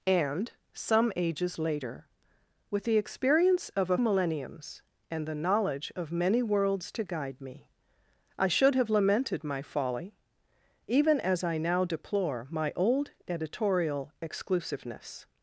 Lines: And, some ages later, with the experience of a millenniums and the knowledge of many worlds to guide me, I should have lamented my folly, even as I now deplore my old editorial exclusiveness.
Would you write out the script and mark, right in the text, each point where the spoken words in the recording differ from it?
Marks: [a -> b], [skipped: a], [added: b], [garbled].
And, some ages later, with the experience of a millenniums and the knowledge of many worlds to guide me, I should have lamented my folly, even as I now deplore my old editorial exclusiveness.